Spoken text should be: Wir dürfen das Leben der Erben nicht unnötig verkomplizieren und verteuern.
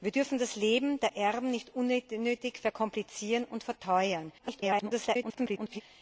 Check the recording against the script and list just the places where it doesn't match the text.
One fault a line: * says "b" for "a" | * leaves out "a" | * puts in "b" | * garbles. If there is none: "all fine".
* garbles